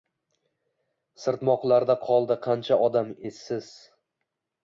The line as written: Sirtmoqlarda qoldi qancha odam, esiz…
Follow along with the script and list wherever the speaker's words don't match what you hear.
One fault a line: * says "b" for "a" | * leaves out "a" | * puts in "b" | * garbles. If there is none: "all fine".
all fine